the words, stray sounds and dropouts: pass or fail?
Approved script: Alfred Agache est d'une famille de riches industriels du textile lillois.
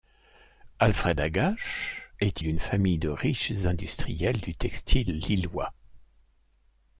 pass